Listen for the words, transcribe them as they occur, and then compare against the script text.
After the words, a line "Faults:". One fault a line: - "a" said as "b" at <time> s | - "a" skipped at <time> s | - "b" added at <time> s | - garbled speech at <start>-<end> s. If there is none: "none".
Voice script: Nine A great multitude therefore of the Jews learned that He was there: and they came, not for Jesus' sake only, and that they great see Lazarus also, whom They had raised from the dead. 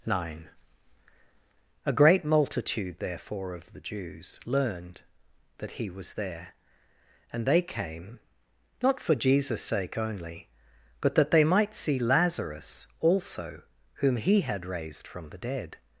Nine A great multitude therefore of the Jews learned that He was there: and they came, not for Jesus' sake only, but that they might see Lazarus also, whom He had raised from the dead.
Faults:
- "and" said as "but" at 11.0 s
- "great" said as "might" at 11.4 s
- "They" said as "He" at 14.2 s